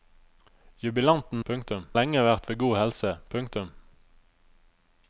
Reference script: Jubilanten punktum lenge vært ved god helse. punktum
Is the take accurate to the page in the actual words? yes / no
yes